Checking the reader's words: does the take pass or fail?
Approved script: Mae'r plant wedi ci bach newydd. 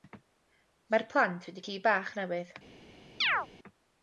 pass